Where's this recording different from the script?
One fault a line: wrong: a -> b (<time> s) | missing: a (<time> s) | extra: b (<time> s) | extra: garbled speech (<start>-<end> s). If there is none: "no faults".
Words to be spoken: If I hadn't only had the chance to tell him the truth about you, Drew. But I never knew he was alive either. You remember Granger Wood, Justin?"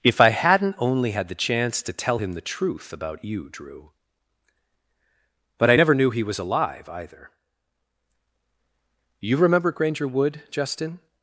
no faults